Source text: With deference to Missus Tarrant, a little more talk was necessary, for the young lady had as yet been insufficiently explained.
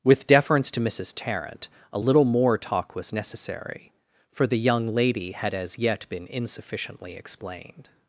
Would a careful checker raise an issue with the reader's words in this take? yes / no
no